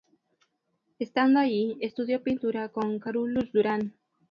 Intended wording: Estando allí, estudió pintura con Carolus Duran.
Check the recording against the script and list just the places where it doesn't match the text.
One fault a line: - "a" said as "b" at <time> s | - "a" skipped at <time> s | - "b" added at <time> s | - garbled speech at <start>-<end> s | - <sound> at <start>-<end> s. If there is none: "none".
none